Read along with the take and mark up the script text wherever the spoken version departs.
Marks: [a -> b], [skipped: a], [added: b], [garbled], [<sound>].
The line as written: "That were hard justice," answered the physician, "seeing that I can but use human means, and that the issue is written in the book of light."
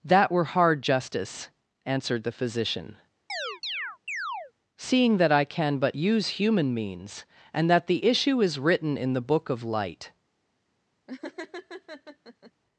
"That were hard justice," answered the physician, [chirp] "seeing that I can but use human means, and that the issue is written in the book of light." [laugh]